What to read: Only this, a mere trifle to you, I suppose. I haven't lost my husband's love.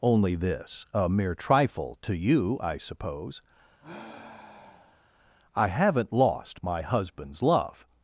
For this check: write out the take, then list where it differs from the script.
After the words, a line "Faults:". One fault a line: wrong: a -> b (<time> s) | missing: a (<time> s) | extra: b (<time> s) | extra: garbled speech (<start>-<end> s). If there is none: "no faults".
Only this, a mere trifle to you, I suppose. I haven't lost my husband's love.
Faults:
no faults